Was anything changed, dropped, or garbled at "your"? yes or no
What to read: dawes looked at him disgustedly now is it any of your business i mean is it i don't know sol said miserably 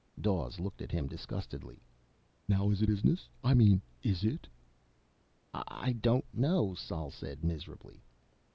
yes